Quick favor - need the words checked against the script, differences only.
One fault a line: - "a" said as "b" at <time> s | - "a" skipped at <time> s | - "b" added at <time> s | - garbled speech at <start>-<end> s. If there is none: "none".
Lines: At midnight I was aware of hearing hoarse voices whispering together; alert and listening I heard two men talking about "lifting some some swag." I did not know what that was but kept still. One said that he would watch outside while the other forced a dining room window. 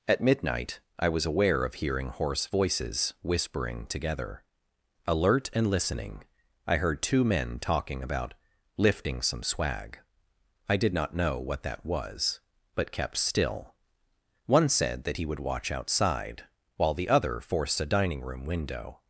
- "some" skipped at 9.4 s